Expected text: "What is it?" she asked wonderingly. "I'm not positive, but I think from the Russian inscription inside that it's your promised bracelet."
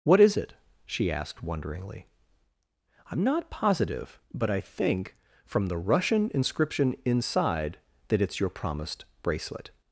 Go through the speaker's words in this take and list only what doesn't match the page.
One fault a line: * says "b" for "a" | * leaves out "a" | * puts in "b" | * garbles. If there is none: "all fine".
all fine